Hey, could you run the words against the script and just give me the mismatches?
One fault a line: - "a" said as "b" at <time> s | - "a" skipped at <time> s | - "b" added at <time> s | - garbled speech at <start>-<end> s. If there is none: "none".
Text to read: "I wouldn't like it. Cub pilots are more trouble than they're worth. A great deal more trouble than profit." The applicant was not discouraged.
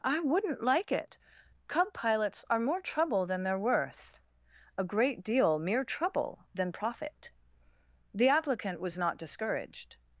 - "more" said as "mere" at 5.6 s